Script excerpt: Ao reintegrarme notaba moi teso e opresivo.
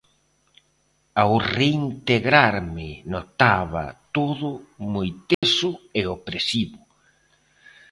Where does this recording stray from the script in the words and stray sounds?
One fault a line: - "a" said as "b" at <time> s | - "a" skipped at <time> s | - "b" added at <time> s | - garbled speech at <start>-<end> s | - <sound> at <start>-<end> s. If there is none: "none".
- "todo" added at 4.2 s
- dropout at 5.3-5.4 s